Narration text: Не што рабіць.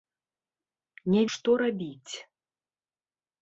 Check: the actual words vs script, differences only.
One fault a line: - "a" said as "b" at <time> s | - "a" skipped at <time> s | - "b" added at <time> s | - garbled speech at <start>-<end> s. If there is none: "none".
none